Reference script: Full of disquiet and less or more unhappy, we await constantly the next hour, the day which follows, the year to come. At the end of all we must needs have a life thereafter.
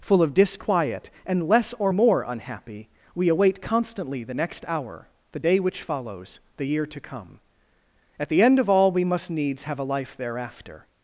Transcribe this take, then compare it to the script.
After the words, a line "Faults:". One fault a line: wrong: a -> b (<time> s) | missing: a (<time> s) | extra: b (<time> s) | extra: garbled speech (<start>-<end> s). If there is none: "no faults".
Full of disquiet and less or more unhappy, we await constantly the next hour, the day which follows, the year to come. At the end of all we must needs have a life thereafter.
Faults:
no faults